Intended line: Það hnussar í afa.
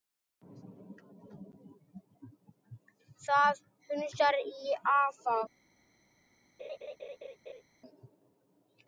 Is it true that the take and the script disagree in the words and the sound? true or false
true